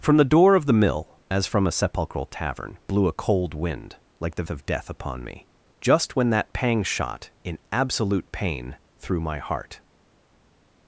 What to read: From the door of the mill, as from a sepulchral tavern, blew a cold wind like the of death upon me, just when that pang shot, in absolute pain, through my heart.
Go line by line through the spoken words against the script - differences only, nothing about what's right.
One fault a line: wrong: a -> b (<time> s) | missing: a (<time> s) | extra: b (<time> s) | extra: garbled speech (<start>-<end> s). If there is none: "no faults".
no faults